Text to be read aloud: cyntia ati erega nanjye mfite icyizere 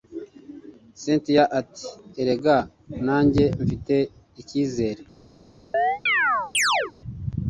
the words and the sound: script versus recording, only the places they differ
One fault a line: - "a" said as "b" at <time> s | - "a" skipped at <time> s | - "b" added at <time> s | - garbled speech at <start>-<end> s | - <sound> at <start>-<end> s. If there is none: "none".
- chirp at 5.7-6.9 s